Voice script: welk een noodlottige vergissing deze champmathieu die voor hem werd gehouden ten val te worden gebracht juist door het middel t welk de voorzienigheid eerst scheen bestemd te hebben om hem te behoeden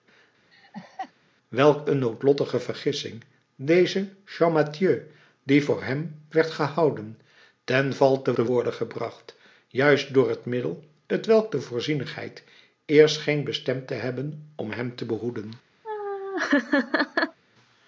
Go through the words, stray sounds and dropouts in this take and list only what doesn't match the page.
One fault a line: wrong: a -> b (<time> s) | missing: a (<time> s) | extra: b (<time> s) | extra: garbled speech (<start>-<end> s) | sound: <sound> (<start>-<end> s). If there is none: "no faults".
sound: laugh (0.5-1.1 s)
extra: te (8.3 s)
sound: laugh (15.8-17.4 s)